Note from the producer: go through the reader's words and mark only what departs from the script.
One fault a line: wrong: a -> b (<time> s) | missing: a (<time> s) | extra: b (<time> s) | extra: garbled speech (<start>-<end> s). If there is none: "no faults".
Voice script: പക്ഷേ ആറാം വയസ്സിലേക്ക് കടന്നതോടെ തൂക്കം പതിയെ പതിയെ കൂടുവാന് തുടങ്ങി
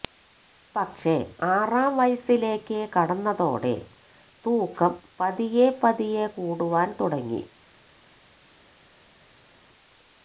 no faults